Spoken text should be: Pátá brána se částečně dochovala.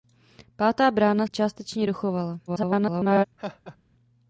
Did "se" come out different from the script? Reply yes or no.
yes